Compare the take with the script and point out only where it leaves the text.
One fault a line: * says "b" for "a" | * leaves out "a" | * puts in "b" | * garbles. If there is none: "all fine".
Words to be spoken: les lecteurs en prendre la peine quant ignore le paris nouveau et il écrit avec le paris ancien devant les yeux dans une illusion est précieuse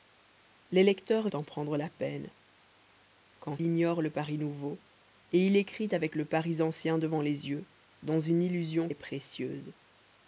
all fine